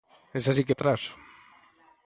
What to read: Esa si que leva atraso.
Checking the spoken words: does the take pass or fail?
fail